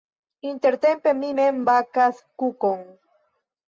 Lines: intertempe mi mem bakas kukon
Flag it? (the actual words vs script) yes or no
no